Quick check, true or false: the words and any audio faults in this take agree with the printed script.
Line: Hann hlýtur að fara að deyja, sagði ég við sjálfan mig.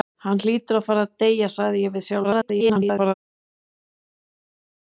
false